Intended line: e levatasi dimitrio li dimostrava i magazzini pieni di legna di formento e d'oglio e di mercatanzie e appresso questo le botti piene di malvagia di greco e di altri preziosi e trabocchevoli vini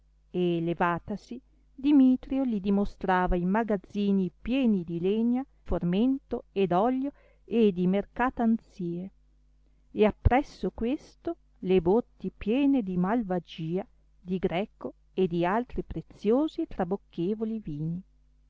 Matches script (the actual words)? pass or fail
fail